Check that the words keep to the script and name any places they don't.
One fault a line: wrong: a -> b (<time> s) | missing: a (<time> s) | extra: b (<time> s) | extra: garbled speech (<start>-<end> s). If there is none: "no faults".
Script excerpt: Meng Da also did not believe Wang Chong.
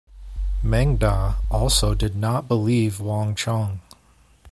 no faults